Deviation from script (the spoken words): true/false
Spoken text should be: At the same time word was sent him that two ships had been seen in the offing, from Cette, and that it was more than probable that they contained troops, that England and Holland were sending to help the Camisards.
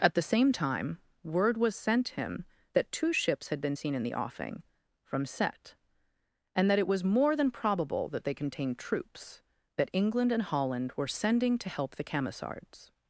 false